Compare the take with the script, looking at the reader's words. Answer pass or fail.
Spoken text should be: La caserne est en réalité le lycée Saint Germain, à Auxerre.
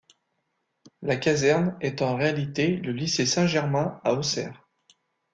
pass